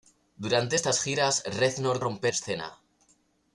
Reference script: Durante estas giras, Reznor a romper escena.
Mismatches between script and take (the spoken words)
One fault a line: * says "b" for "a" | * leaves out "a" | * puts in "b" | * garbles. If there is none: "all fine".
all fine